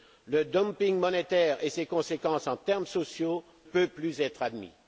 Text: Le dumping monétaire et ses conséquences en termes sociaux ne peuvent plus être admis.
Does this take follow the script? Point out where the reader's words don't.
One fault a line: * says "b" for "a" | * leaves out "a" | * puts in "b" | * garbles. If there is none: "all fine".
* leaves out "ne"